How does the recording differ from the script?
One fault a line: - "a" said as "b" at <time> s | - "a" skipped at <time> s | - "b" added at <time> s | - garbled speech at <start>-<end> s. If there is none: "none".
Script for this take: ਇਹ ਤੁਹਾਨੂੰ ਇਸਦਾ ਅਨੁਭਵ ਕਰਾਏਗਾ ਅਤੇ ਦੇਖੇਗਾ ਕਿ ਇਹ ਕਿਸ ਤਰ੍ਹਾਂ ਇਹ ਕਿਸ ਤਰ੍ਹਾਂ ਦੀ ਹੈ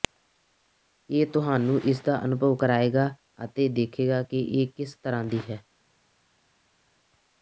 - "ਇਹ ਕਿਸ ਤਰ੍ਹਾਂ" skipped at 5.2 s